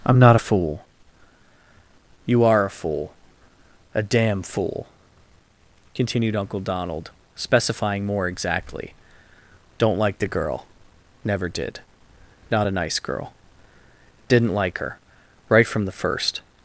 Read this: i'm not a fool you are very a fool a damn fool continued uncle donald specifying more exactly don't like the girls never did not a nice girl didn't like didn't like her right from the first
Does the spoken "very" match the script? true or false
false